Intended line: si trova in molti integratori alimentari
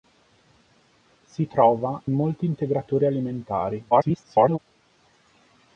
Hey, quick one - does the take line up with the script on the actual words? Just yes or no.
no